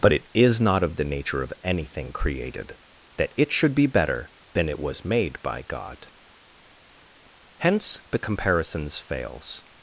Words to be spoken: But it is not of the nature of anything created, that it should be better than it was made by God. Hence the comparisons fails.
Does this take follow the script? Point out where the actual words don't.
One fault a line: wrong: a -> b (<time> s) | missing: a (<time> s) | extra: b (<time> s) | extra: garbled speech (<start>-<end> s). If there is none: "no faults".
no faults